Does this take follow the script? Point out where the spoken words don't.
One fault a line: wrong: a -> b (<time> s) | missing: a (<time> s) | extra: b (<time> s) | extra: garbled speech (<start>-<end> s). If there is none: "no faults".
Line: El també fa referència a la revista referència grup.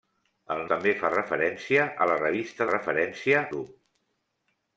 no faults